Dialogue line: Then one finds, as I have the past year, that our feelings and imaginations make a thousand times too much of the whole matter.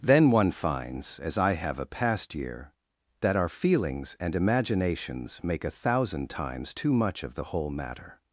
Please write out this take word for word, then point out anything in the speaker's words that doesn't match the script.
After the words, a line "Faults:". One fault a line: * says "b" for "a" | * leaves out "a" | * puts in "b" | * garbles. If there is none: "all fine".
Then one finds, as I have a past year, that our feelings and imaginations make a thousand times too much of the whole matter.
Faults:
* says "a" for "the"